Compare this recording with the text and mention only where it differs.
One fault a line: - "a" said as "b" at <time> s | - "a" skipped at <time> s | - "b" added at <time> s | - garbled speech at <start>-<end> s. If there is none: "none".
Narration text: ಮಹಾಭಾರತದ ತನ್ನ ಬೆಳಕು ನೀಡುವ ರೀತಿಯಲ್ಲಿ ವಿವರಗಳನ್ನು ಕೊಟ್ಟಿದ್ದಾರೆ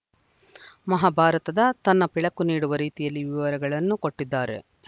none